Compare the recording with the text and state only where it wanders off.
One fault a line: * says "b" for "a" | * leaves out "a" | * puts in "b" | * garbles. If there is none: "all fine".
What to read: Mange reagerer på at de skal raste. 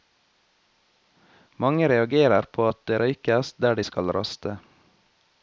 * puts in "det røykes der"